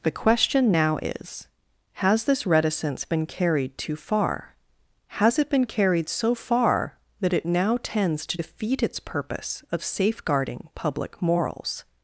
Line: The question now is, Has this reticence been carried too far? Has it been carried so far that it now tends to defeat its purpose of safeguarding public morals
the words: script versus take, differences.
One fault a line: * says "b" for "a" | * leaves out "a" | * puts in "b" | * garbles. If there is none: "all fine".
all fine